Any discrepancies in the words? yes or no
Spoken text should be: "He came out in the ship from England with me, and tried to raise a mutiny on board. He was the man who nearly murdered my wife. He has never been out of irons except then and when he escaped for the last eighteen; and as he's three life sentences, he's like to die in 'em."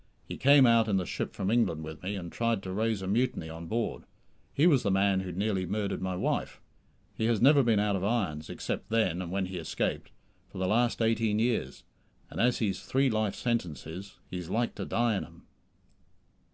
yes